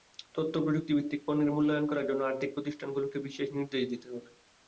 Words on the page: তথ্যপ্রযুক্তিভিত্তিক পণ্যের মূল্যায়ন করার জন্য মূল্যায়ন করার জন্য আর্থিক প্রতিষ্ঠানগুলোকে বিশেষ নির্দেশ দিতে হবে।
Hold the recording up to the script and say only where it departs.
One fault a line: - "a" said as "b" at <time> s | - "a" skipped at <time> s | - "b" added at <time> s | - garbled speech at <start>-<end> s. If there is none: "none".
- "মূল্যায়ন করার জন্য" skipped at 2.2 s